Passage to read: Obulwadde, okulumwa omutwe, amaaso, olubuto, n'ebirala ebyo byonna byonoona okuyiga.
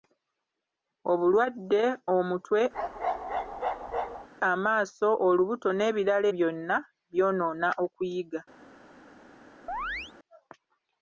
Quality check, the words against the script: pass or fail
fail